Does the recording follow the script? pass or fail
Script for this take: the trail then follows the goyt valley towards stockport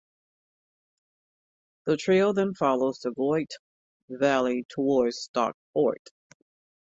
pass